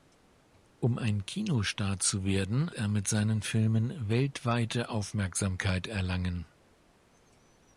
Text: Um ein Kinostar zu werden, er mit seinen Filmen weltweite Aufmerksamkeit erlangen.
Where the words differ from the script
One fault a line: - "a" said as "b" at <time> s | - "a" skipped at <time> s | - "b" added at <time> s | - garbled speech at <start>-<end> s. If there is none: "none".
none